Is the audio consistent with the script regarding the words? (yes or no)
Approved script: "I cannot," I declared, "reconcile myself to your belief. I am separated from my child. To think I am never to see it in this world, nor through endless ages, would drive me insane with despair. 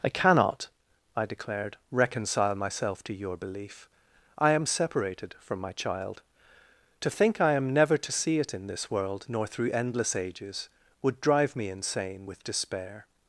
yes